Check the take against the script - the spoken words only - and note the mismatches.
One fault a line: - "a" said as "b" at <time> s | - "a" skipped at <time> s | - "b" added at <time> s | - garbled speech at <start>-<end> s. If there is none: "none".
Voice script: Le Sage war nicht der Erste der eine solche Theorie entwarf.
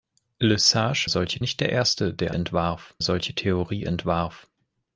- "war" said as "solche" at 1.1 s
- "eine" said as "entwarf" at 2.3 s